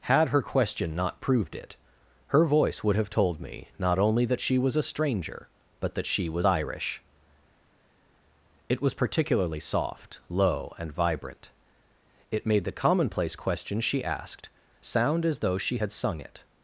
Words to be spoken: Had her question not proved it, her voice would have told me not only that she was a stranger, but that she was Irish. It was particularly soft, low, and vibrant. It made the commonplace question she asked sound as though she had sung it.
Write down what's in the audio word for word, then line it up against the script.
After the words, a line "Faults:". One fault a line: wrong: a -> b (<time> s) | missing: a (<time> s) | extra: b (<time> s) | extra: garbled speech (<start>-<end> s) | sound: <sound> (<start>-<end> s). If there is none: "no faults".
Had her question not proved it, her voice would have told me not only that she was a stranger, but that she was Irish. It was particularly soft, low, and vibrant. It made the commonplace question she asked sound as though she had sung it.
Faults:
no faults